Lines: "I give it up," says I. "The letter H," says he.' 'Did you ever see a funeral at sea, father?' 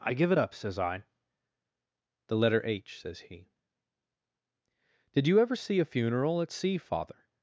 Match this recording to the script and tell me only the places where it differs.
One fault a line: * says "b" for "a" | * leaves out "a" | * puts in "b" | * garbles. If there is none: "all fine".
all fine